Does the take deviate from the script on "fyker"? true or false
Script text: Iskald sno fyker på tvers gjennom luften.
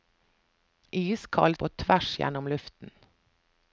true